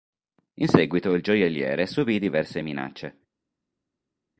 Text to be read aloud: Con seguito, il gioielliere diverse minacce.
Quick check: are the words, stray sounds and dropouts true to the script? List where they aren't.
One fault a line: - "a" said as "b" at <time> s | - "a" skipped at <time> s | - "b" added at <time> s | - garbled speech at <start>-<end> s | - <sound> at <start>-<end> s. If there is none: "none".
- "Con" said as "In" at 0.6 s
- "subì" added at 1.9 s